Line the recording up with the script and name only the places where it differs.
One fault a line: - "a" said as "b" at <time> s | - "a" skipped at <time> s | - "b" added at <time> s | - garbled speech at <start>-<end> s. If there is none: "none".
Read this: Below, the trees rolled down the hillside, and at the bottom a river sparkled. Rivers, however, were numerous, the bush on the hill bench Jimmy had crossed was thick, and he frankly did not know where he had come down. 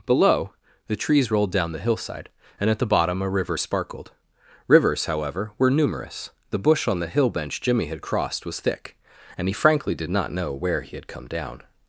none